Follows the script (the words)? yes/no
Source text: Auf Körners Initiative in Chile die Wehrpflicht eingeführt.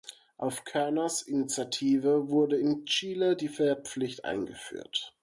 no